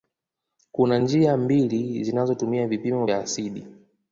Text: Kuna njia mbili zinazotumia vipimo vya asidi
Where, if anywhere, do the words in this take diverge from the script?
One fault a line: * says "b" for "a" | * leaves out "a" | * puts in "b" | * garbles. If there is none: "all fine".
all fine